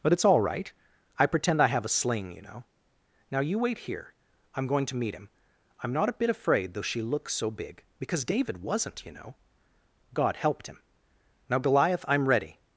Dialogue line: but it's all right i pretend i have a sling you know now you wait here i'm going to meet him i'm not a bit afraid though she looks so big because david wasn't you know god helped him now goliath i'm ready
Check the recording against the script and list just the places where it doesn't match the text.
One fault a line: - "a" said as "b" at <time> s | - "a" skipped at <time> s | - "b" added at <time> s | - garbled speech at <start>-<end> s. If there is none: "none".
none